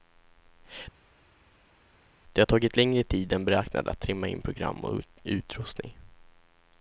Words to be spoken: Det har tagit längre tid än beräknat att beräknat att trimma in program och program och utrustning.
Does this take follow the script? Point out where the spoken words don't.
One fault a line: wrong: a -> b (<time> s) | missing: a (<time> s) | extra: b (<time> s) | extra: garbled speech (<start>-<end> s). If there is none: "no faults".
missing: beräknat att (4.0 s)
missing: program och (5.0 s)